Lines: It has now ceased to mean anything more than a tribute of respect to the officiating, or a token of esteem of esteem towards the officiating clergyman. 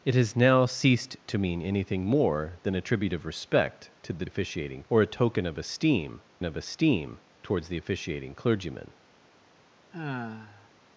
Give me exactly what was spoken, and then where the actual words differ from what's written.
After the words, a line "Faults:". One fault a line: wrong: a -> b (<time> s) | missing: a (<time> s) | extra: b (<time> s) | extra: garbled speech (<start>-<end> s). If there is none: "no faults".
It has now ceased to mean anything more than a tribute of respect to the officiating, or a token of esteem of esteem towards the officiating clergyman.
Faults:
no faults